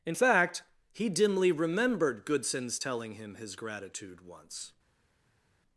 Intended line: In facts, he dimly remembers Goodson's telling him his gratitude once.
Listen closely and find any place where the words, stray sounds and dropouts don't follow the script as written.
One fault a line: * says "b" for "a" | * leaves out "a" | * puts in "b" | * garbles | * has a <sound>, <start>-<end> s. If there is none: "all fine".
* says "fact" for "facts"
* says "remembered" for "remembers"